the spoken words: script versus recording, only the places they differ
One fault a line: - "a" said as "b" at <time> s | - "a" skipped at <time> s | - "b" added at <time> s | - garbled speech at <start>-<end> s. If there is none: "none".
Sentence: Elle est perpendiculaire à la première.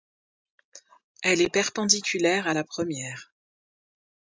none